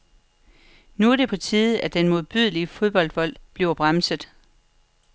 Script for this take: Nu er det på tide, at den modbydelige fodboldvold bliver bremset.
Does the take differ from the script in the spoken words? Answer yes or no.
no